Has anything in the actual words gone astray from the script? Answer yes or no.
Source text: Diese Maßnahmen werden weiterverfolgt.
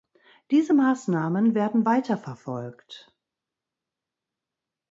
no